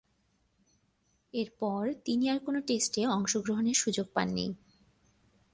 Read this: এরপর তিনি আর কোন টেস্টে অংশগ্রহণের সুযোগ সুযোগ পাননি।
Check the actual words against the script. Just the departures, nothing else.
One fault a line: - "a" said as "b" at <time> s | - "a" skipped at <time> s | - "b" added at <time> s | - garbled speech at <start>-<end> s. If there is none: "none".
- "সুযোগ" skipped at 4.1 s